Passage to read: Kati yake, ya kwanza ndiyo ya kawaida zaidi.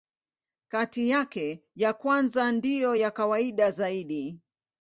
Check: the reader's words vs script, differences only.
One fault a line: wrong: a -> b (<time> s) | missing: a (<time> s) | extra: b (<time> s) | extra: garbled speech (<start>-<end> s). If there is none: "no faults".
no faults